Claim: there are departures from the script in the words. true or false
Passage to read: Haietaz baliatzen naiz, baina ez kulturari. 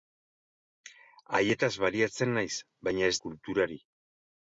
false